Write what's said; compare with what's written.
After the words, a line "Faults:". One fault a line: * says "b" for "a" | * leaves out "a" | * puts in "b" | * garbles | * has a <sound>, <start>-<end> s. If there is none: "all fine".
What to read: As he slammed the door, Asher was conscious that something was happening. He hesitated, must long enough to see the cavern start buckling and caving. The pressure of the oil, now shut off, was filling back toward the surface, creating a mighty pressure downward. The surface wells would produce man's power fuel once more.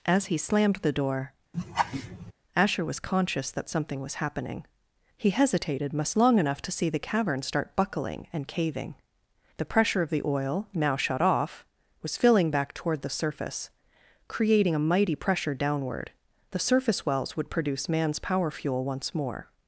As he slammed the door, Asher was conscious that something was happening. He hesitated, must long enough to see the cavern start buckling and caving. The pressure of the oil, now shut off, was filling back toward the surface, creating a mighty pressure downward. The surface wells would produce man's power fuel once more.
Faults:
* has a laugh, 1.5-2.3 s